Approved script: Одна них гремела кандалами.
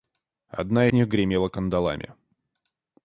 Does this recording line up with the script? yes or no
yes